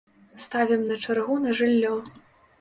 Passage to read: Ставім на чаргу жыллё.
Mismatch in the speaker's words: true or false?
true